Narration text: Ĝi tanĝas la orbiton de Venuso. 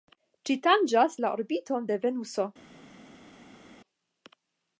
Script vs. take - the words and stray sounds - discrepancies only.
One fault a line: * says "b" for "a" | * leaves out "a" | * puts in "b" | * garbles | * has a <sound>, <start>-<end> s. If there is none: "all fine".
all fine